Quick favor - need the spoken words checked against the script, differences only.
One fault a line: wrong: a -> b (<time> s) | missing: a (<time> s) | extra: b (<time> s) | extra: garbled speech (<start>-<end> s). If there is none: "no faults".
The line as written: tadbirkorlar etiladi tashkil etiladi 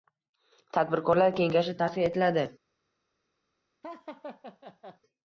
wrong: etiladi -> kengashi (1.4 s)